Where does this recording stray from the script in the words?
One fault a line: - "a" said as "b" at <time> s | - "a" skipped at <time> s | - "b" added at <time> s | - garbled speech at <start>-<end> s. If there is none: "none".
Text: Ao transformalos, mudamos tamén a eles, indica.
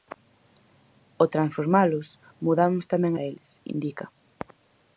none